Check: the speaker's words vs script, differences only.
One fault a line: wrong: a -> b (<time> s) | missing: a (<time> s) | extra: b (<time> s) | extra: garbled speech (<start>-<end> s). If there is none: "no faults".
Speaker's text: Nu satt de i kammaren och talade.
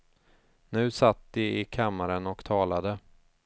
no faults